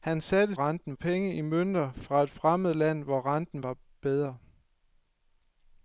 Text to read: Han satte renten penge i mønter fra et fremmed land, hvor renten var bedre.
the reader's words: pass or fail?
pass